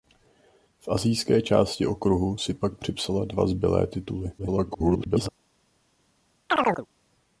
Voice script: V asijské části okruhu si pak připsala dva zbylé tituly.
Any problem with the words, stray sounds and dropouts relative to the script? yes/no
yes